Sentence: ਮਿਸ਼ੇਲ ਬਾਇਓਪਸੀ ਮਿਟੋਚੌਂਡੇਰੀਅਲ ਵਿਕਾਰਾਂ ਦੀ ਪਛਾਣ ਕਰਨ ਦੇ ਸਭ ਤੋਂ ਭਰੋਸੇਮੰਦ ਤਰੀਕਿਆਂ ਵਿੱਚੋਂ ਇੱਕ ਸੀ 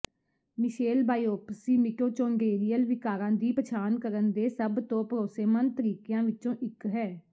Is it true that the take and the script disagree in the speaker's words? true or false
true